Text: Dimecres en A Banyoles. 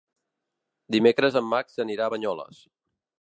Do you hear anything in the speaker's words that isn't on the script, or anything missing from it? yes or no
yes